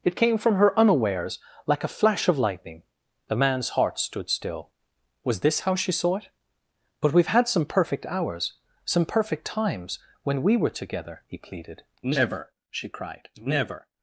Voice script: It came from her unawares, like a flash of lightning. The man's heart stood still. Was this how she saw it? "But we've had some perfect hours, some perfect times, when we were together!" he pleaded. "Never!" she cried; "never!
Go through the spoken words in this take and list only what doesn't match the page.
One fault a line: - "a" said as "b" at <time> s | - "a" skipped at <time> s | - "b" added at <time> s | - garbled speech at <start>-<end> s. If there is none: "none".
none